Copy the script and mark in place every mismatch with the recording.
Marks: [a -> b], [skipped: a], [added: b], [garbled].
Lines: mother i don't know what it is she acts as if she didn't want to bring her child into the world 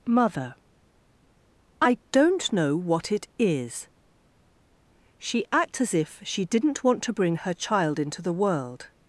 mother i don't know what it is she acts as if she didn't want to bring her child into the world